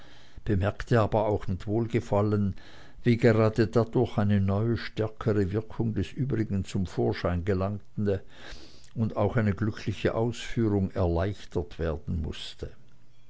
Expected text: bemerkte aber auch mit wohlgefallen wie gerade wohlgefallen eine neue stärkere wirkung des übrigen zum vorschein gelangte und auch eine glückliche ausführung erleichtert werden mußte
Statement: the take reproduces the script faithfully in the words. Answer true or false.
false